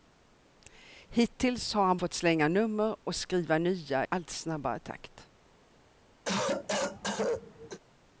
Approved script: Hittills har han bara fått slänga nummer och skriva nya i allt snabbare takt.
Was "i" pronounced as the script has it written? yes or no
no